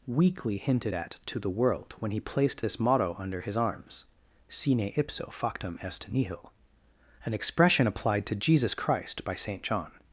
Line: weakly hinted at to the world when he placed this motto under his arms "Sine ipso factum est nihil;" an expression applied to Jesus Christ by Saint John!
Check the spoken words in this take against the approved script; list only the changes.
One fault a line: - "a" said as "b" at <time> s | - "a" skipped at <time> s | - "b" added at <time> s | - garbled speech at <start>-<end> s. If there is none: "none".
none